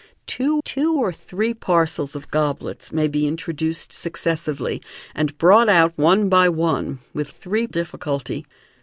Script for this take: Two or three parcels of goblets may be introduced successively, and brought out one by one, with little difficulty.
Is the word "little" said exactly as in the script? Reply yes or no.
no